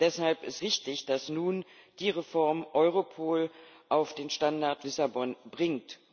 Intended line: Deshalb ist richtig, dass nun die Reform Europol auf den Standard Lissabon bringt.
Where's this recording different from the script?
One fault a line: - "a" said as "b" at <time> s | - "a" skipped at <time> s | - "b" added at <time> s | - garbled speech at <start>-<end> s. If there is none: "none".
none